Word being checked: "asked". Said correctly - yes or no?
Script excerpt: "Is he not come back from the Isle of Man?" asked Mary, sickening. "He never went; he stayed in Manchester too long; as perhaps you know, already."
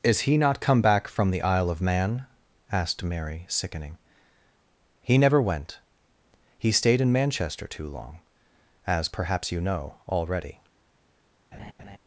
yes